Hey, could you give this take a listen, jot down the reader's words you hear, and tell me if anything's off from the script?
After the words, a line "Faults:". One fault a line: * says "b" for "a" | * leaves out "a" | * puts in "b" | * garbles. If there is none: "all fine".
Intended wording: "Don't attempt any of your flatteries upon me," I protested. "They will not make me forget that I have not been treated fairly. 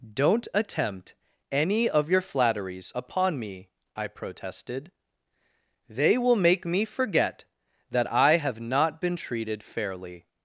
"Don't attempt any of your flatteries upon me," I protested. "They will make me forget that I have not been treated fairly.
Faults:
* leaves out "not"